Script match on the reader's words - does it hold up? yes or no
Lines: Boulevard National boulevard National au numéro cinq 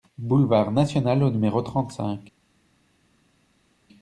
no